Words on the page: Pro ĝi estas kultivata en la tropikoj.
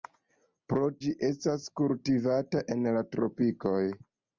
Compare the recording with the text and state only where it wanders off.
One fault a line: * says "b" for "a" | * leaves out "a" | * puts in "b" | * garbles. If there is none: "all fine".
all fine